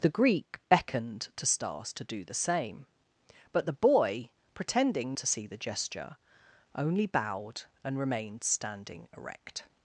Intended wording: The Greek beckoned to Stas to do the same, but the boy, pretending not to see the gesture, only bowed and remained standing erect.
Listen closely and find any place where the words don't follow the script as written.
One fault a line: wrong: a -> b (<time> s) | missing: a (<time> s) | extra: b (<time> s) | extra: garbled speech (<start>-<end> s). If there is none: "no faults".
missing: not (5.2 s)